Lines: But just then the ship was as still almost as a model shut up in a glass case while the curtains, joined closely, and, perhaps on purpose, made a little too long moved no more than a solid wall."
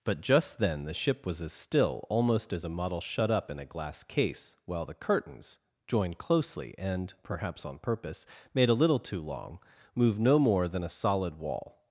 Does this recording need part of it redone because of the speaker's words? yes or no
no